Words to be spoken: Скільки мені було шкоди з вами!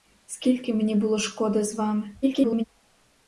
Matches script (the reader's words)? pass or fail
fail